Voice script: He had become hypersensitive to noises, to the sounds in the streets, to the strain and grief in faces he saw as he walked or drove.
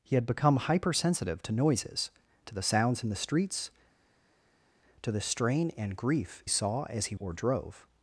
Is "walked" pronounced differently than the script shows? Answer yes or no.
yes